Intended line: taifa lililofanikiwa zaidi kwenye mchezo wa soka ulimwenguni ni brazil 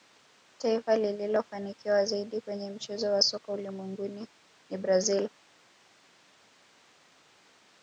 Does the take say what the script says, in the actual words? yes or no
yes